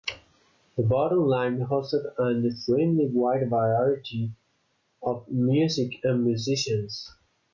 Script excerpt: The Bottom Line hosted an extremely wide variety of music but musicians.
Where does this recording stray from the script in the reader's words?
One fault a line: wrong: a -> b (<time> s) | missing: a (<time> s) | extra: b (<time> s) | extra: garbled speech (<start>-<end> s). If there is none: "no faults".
wrong: but -> and (6.1 s)